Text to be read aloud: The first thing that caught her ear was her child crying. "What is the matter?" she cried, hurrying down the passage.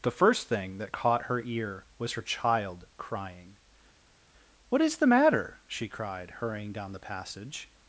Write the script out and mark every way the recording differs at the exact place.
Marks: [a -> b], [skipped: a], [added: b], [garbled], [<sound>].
The first thing that caught her ear was her child crying. "What is the matter?" she cried, hurrying down the passage.